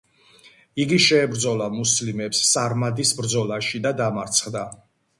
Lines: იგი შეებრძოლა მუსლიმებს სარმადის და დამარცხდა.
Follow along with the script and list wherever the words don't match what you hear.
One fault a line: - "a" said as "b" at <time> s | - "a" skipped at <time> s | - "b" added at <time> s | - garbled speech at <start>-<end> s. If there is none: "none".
- "ბრძოლაში" added at 3.2 s